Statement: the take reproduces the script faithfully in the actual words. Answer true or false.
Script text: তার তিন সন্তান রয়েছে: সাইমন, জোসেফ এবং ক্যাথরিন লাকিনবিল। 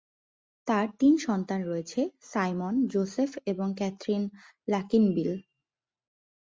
true